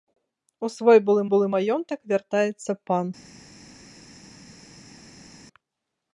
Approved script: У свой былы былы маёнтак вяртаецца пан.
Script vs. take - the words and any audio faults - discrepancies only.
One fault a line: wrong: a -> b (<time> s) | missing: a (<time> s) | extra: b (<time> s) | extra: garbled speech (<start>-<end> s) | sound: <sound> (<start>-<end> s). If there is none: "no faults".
no faults